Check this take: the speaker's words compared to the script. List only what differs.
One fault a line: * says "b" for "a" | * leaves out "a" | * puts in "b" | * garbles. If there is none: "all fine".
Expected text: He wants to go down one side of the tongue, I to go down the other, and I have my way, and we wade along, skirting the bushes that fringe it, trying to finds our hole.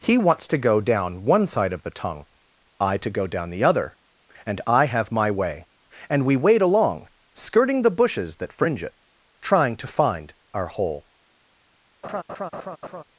* says "find" for "finds"